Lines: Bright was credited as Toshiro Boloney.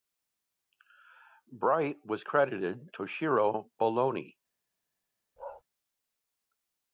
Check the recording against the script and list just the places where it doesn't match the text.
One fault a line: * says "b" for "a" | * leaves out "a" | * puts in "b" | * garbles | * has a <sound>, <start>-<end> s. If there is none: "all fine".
* leaves out "as"
* has a bark, 5.4-5.6 s